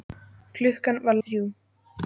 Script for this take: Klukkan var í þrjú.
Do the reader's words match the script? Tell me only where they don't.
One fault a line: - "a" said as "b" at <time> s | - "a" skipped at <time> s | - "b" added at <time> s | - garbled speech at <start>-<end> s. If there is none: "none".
none